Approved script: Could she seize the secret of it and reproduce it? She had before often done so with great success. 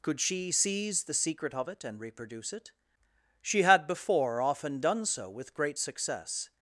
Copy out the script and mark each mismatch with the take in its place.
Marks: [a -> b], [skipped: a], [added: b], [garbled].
Could she seize the secret of it and reproduce it? She had before often done so with great success.